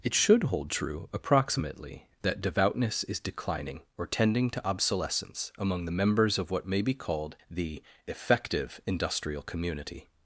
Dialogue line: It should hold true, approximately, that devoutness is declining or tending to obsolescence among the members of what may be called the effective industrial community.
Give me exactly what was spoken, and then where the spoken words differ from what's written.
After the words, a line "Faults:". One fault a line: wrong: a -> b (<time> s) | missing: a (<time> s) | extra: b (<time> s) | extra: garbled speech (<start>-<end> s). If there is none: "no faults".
It should hold true, approximately, that devoutness is declining or tending to obsolescence among the members of what may be called the effective industrial community.
Faults:
no faults